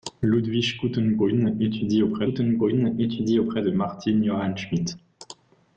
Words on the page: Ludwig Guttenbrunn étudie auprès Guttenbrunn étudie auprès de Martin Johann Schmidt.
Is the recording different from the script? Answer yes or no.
no